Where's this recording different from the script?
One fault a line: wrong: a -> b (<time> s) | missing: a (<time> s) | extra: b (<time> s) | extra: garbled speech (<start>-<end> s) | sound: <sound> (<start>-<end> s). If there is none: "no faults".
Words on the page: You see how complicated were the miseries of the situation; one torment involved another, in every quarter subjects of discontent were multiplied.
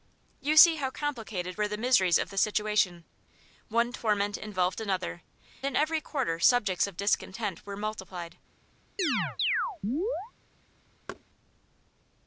sound: chirp (9.0-10.3 s)
sound: thud (11.1-11.2 s)